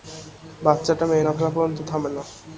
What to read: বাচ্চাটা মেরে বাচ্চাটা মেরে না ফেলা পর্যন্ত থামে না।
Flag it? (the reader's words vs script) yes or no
yes